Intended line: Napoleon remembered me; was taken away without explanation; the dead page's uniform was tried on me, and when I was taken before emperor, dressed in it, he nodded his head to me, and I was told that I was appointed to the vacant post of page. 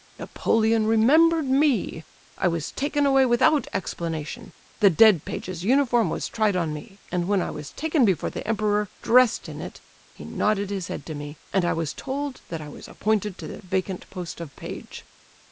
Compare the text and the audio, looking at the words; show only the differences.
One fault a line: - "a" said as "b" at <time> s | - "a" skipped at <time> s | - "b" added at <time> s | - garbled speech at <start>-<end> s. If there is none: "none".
- "I" added at 2.4 s
- "the" added at 8.3 s